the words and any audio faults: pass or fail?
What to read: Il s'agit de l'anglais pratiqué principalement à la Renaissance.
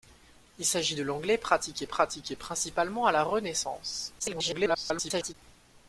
fail